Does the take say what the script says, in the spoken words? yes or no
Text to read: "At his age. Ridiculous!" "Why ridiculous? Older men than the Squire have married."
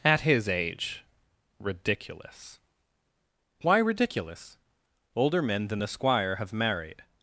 yes